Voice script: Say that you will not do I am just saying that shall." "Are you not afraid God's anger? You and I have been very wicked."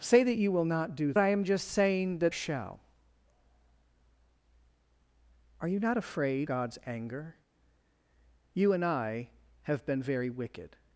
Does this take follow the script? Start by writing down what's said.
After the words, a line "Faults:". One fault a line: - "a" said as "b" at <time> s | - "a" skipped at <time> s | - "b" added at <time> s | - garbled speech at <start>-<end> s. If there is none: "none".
Say that you will not do I am just saying that shall." "Are you not afraid God's anger? You and I have been very wicked."
Faults:
none